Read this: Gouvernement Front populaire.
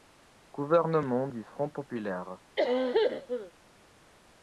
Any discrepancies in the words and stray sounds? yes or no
yes